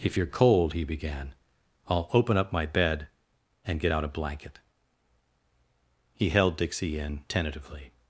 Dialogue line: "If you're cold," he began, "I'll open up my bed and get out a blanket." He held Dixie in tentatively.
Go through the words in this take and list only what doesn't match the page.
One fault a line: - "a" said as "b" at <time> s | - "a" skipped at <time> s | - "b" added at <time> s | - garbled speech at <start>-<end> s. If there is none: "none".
none